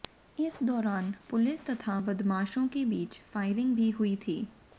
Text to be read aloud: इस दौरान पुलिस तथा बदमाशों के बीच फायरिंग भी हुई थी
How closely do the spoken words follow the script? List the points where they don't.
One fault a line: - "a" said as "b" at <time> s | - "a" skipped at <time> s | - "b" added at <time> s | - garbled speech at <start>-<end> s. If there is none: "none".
none